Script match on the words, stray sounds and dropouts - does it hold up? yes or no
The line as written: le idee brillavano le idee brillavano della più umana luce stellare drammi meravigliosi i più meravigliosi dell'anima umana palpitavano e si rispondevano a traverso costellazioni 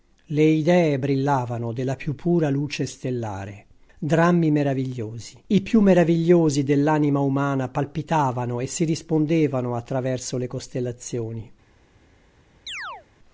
no